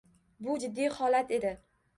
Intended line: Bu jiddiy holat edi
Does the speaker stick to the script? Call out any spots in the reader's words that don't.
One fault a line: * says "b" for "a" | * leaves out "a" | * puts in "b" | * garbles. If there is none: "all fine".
all fine